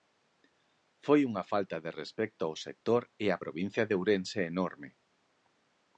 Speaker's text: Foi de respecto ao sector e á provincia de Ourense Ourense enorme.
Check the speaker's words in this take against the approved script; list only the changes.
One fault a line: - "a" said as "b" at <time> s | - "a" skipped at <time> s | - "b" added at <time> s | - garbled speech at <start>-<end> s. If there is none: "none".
- "unha falta" added at 1.3 s
- "Ourense" skipped at 4.4 s